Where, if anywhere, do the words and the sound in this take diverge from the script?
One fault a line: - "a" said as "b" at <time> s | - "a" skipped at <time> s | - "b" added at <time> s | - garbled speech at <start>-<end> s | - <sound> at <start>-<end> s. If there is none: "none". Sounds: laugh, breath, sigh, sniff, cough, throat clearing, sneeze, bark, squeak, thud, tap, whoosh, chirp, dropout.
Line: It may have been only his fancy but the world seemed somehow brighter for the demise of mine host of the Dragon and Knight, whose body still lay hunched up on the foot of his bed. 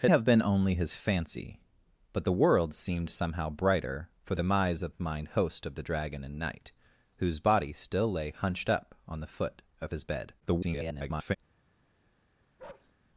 - "may" skipped at 0.1 s
- "the" skipped at 4.3 s
- garbled speech at 10.4-11.4 s
- bark at 12.6-12.9 s